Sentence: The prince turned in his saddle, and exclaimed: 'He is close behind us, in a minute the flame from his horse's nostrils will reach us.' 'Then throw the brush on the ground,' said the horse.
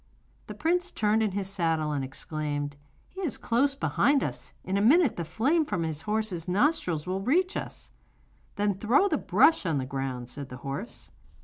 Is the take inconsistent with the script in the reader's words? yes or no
no